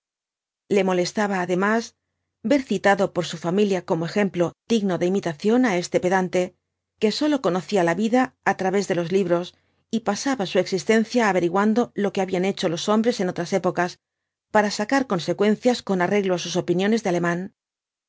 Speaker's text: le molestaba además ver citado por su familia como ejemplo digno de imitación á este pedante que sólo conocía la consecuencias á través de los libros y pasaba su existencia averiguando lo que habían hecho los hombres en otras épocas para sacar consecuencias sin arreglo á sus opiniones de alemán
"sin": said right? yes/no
no